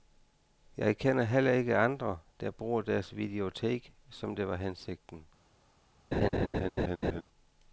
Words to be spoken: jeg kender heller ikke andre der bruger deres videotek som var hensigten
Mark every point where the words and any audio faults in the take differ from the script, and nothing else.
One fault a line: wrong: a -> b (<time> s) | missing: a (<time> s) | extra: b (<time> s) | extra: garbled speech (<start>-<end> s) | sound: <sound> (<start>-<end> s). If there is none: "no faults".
extra: det (4.4 s)
sound: laugh (6.1-7.2 s)